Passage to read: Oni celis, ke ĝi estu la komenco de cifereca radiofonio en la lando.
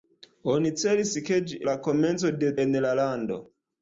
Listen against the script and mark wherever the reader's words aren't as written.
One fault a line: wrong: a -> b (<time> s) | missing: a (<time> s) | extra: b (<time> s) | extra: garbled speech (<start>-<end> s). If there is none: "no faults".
missing: estu (1.6 s)
missing: cifereca radiofonio (2.5 s)